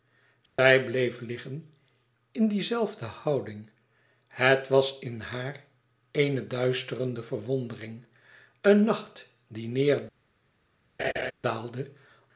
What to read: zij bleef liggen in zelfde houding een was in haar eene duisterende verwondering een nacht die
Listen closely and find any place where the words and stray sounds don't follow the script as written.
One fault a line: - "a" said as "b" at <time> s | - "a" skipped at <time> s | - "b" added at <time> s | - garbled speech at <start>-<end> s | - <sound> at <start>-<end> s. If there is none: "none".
- dropout at 0.5-0.6 s
- "die" added at 2.5 s
- "een" said as "het" at 4.3 s
- laugh at 11.0-11.3 s